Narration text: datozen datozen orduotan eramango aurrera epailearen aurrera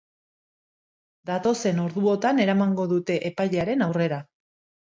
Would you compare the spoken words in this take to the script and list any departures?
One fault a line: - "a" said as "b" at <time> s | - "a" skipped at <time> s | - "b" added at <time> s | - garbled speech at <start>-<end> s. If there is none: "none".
- "datozen" skipped at 1.8 s
- "aurrera" said as "dute" at 3.0 s